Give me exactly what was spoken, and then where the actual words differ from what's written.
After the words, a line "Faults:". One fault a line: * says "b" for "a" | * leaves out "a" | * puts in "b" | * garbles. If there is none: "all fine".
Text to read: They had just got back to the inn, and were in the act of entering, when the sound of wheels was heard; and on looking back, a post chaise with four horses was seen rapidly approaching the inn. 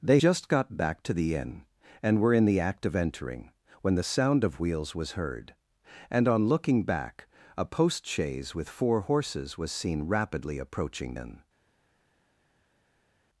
They just got back to the inn, and were in the act of entering, when the sound of wheels was heard; and on looking back, a post chaise with four horses was seen rapidly approaching inn.
Faults:
* leaves out "had"
* leaves out "the"